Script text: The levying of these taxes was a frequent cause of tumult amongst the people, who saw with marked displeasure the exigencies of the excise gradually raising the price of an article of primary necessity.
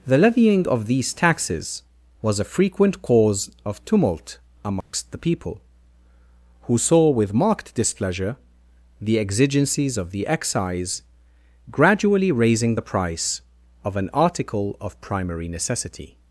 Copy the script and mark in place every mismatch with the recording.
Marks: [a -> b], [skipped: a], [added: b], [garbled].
The levying of these taxes was a frequent cause of tumult amongst the people, who saw with marked displeasure the exigencies of the excise gradually raising the price of an article of primary necessity.